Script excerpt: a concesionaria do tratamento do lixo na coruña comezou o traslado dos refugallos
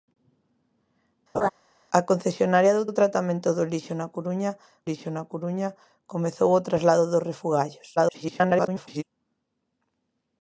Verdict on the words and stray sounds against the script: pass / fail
fail